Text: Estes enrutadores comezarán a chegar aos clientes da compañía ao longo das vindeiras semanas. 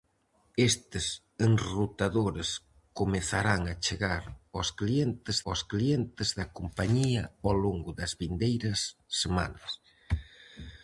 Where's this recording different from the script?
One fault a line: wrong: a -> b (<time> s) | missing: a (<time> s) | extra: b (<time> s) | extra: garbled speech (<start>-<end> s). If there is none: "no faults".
extra: aos clientes (5.5 s)